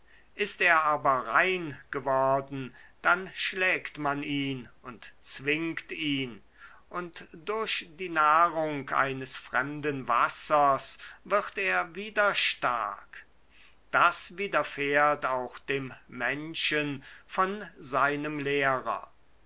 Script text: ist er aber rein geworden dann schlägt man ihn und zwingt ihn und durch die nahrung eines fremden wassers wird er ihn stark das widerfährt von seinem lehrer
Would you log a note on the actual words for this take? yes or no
yes